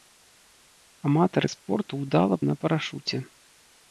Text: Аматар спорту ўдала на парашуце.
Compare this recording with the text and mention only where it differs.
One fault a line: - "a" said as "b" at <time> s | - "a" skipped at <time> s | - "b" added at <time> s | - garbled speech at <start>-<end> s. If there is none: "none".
none